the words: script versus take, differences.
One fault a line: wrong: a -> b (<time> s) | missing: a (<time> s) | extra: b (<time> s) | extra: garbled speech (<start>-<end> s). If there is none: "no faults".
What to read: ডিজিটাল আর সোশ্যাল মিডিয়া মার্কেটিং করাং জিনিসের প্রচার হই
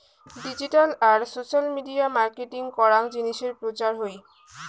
no faults